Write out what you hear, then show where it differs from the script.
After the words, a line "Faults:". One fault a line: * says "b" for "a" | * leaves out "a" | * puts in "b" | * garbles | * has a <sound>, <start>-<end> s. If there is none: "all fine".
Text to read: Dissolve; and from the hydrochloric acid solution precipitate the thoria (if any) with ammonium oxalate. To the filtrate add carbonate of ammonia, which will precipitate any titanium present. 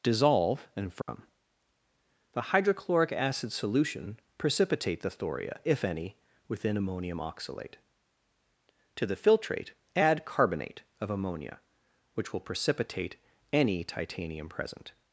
Dissolve; and from the hydrochloric acid solution precipitate the thoria (if any) within ammonium oxalate. To the filtrate add carbonate of ammonia, which will precipitate any titanium present.
Faults:
* has a dropout, 1.0-1.1 s
* says "within" for "with"